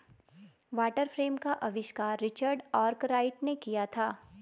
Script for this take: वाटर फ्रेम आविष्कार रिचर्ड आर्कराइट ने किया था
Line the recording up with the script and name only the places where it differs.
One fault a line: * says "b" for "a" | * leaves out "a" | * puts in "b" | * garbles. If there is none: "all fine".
* puts in "का"